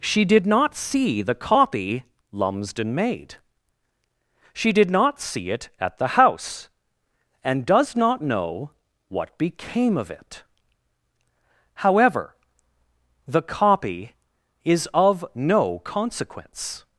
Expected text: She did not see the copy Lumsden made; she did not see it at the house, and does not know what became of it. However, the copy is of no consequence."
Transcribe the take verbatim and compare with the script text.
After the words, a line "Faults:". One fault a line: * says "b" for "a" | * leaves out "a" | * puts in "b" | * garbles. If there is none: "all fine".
She did not see the copy Lumsden made; she did not see it at the house, and does not know what became of it. However, the copy is of no consequence."
Faults:
all fine